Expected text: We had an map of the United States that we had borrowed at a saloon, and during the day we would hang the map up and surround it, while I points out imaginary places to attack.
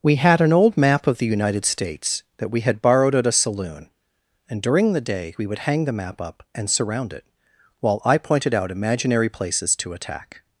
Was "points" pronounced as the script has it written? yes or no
no